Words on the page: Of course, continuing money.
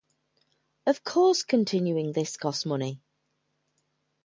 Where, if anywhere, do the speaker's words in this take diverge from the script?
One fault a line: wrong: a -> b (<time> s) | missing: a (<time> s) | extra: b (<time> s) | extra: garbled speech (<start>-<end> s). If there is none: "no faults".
extra: this costs (2.1 s)